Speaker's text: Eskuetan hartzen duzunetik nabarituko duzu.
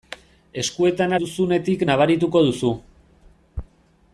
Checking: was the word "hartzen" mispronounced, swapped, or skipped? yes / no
yes